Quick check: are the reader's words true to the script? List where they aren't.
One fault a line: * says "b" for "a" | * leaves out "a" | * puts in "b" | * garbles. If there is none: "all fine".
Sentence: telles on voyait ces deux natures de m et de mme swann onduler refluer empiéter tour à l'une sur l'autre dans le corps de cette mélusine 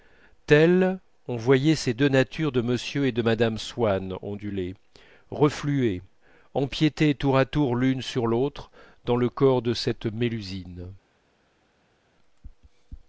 * puts in "tour"